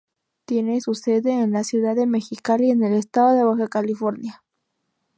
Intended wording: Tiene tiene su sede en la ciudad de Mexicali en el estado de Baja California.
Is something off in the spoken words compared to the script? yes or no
yes